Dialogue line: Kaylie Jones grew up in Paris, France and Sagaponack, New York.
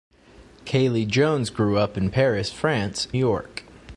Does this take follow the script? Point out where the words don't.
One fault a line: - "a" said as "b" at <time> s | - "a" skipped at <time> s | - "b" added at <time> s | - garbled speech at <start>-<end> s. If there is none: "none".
- "and Sagaponack New" skipped at 3.1 s